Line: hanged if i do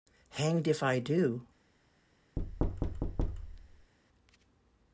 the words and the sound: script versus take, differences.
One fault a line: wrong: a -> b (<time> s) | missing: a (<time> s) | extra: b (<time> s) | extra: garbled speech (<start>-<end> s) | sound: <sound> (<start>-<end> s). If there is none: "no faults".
sound: thud (2.4-3.9 s)